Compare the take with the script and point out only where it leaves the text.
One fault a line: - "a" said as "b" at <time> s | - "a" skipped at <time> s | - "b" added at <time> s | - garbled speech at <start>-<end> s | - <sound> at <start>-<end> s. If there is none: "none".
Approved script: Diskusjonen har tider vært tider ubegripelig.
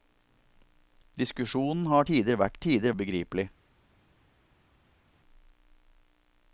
none